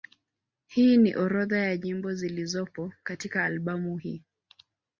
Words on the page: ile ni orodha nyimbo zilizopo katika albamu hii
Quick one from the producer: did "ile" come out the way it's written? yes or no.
no